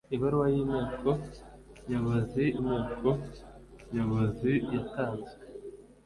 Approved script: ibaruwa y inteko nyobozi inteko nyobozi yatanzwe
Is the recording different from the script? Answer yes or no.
no